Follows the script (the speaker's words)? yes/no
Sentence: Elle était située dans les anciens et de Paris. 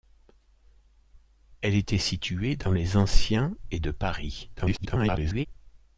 no